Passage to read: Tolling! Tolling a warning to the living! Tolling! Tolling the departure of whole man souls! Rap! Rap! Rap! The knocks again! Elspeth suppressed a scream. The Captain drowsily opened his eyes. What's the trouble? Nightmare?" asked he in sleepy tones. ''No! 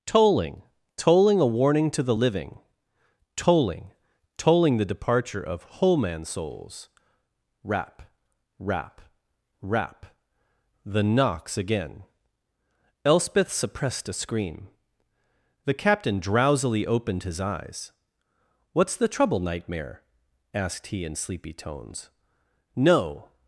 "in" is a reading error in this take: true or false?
false